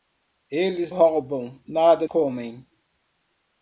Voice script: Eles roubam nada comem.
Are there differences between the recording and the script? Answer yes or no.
no